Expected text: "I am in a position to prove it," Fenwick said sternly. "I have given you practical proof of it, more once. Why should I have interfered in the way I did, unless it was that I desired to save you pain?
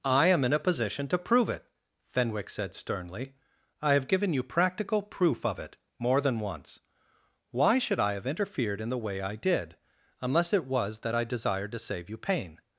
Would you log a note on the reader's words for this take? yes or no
yes